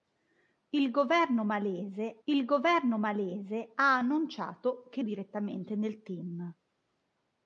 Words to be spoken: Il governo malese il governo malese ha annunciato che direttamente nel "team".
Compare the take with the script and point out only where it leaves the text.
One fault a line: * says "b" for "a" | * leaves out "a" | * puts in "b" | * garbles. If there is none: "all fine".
all fine